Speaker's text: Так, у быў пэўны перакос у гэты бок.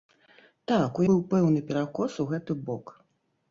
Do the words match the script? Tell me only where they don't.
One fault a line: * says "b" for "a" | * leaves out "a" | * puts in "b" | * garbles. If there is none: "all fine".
all fine